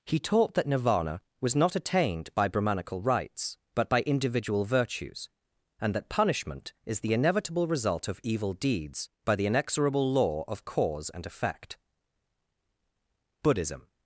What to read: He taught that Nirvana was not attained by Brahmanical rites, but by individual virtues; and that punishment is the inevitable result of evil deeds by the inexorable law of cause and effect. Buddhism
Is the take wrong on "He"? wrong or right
right